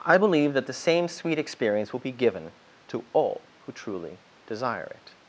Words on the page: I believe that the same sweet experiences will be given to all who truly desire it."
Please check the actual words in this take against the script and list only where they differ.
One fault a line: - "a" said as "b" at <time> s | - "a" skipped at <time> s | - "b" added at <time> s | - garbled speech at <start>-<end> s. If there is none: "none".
- "experiences" said as "experience" at 1.4 s